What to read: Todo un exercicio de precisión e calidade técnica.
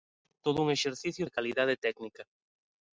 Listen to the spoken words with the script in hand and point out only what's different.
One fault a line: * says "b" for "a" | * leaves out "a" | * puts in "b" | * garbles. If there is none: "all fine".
* leaves out "de precisión"